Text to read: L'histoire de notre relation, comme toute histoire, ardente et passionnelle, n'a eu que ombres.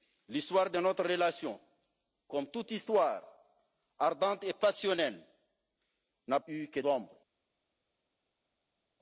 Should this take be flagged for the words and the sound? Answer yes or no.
no